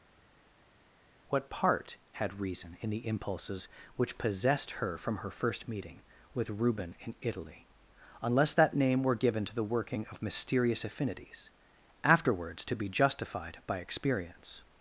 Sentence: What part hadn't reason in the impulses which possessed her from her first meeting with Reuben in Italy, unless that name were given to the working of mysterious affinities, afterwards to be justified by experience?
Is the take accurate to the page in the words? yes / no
no